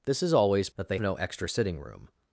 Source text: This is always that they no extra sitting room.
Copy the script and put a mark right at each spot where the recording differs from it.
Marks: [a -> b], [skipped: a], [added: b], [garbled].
This is always that they no extra sitting room.